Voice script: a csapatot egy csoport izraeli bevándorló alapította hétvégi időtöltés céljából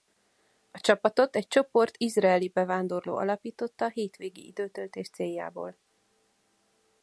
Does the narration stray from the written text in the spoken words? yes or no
no